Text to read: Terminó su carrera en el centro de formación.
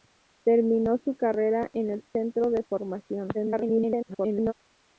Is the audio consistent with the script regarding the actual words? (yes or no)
no